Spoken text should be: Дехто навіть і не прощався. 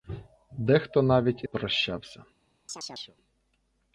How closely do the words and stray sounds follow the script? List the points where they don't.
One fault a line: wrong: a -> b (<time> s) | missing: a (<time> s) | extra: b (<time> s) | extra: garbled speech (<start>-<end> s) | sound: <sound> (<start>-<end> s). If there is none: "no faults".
missing: не (1.5 s)
sound: chirp (2.7-3.2 s)